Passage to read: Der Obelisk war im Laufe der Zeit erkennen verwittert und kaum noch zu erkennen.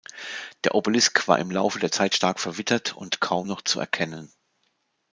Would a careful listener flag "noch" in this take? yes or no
no